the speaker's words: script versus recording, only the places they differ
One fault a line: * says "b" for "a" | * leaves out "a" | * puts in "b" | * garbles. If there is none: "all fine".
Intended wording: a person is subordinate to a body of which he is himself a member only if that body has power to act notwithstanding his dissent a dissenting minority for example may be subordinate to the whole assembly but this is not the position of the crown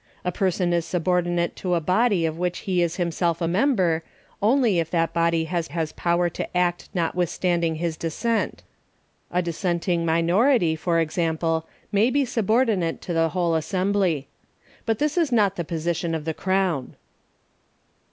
* puts in "has"